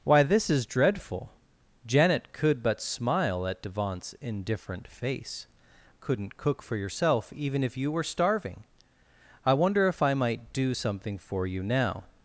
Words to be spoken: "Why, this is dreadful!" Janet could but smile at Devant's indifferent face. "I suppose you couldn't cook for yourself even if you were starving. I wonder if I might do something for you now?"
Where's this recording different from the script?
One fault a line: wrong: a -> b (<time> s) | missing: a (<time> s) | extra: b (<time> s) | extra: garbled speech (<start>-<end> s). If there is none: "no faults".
missing: I suppose you (5.5 s)